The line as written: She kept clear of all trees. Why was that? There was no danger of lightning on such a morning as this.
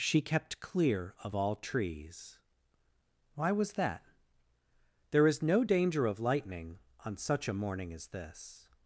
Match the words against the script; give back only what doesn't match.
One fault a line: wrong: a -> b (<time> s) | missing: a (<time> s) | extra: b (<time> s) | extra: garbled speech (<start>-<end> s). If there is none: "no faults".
wrong: was -> is (5.3 s)